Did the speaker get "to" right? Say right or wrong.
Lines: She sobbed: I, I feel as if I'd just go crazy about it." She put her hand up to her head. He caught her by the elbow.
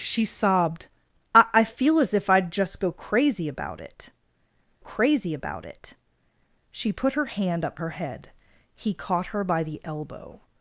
wrong